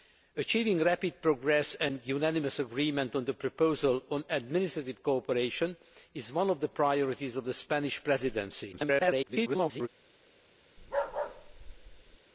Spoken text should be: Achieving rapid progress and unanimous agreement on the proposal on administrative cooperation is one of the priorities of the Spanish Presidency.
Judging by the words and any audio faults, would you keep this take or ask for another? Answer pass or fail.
fail